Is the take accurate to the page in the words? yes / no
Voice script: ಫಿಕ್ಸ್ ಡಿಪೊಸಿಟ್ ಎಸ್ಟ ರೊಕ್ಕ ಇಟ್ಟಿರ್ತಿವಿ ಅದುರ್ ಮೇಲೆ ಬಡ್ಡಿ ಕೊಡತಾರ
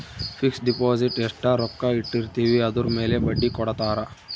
yes